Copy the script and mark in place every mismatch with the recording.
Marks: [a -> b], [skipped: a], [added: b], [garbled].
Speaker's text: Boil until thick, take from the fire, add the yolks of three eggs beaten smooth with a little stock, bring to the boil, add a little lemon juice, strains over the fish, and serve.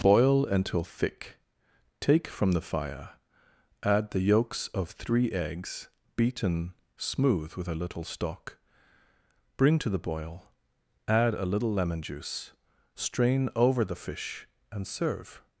Boil until thick, take from the fire, add the yolks of three eggs beaten smooth with a little stock, bring to the boil, add a little lemon juice, [strains -> strain] over the fish, and serve.